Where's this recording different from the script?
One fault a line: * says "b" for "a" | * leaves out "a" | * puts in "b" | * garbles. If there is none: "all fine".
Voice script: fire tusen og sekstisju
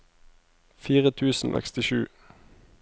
* leaves out "og"